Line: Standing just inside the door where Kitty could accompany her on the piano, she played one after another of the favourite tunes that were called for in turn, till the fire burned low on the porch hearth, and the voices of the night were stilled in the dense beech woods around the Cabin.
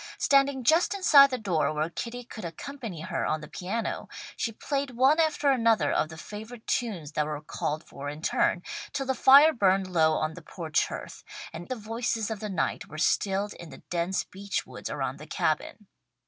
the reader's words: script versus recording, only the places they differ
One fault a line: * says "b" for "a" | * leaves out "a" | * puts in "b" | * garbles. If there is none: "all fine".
all fine